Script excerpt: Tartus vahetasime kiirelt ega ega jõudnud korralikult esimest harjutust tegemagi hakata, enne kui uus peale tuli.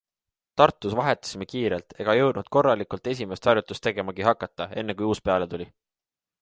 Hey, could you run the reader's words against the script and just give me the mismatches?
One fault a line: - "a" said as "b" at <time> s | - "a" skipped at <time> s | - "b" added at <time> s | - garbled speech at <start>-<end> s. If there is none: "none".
- "ega" skipped at 2.1 s